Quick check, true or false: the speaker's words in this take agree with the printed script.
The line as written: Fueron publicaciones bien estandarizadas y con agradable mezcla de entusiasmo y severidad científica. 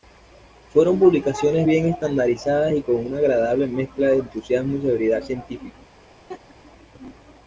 false